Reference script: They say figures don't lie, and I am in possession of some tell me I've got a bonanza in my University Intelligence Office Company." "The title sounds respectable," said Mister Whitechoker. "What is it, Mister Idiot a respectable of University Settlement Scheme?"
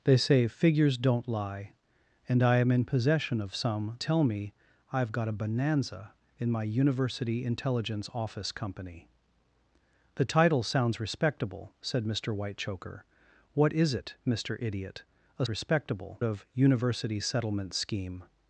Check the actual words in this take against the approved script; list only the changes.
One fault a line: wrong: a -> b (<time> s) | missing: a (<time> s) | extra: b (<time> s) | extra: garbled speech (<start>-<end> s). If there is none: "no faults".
no faults